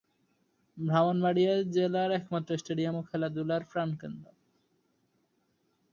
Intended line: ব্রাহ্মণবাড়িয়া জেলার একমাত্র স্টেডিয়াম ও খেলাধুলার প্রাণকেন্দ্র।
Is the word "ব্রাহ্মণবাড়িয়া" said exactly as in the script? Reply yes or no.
yes